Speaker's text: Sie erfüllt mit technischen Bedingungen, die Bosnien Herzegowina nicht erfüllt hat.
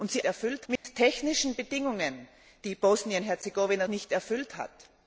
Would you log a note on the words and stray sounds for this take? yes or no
yes